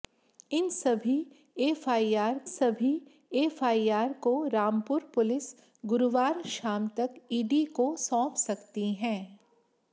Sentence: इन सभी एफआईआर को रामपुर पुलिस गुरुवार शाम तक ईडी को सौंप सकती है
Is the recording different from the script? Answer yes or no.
yes